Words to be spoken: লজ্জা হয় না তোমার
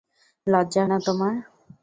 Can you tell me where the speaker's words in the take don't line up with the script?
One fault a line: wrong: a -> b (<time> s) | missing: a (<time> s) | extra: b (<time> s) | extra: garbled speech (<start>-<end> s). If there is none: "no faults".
missing: হয় (0.8 s)